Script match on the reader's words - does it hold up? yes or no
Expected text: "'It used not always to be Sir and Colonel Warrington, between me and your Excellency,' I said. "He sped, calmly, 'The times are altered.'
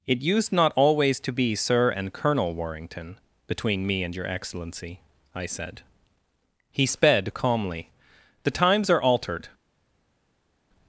yes